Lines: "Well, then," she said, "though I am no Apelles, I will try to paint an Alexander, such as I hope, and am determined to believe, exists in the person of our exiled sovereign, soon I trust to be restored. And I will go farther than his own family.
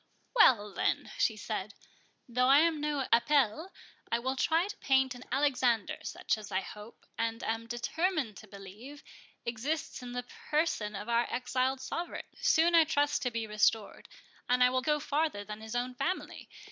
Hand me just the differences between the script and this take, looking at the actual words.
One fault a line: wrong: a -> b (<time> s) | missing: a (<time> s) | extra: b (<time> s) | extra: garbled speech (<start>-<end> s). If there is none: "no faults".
no faults